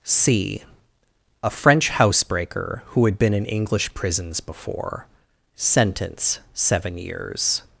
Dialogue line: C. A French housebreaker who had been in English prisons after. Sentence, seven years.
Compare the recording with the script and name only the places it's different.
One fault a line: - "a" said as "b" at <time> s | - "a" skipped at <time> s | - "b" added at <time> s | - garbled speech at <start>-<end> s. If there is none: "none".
- "after" said as "before" at 4.4 s